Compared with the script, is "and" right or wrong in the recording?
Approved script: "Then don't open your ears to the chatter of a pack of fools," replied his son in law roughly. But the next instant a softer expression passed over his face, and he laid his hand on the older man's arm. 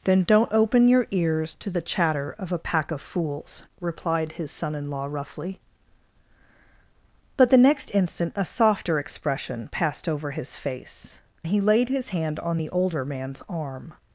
wrong